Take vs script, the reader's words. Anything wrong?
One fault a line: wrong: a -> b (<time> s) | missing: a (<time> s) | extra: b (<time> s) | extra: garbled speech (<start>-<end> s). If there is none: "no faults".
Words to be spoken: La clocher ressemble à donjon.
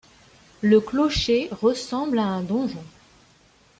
wrong: La -> Le (0.6 s)
extra: un (2.2 s)